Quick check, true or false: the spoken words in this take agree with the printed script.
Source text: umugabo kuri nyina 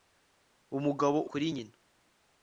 true